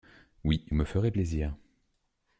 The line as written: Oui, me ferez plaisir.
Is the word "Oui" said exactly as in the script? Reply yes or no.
yes